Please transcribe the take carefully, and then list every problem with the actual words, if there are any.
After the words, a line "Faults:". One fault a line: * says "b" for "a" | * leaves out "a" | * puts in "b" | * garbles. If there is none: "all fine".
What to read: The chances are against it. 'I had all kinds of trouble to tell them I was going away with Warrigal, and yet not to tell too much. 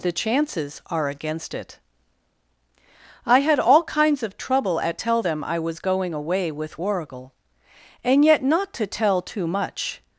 The chances are against it. 'I had all kinds of trouble at tell them I was going away with Warrigal, and yet not to tell too much.
Faults:
* says "at" for "to"